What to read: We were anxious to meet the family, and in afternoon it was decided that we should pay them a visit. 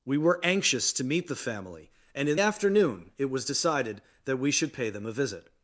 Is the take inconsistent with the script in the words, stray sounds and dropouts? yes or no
no